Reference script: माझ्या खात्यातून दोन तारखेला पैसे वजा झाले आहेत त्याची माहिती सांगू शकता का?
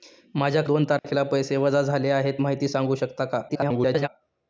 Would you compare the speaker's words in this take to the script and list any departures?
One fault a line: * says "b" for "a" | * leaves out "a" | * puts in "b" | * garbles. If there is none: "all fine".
* leaves out "खात्यातून"
* leaves out "त्याची"
* garbles